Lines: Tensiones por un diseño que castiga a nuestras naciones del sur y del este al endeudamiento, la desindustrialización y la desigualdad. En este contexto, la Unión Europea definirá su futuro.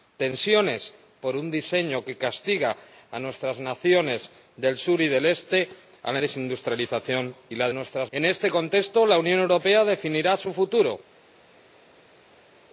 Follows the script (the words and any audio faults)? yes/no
no